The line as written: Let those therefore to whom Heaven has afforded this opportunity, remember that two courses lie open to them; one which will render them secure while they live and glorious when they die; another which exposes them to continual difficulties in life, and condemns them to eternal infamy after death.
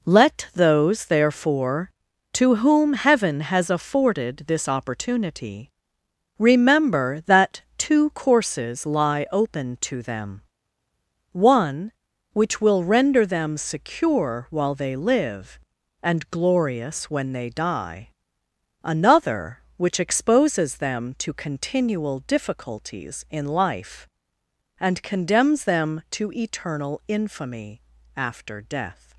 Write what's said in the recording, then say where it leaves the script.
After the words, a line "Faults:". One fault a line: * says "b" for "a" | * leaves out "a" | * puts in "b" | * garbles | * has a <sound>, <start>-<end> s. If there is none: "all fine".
Let those therefore to whom Heaven has afforded this opportunity, remember that two courses lie open to them; one which will render them secure while they live and glorious when they die; another which exposes them to continual difficulties in life, and condemns them to eternal infamy after death.
Faults:
all fine